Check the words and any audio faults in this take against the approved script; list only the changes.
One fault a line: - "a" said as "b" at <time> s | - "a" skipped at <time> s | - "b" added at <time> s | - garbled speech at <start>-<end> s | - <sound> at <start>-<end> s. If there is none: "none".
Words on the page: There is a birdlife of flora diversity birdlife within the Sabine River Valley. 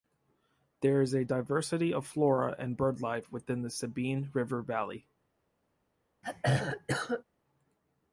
- "birdlife" said as "diversity" at 1.2 s
- "diversity" said as "and" at 2.6 s
- throat clearing at 6.2-7.2 s